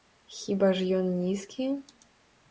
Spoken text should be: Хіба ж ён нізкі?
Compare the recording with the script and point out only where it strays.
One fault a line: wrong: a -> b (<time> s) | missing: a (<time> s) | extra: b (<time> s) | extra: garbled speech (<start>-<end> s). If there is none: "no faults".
no faults